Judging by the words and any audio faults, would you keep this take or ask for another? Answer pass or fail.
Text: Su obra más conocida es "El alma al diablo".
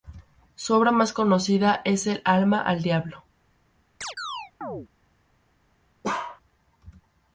fail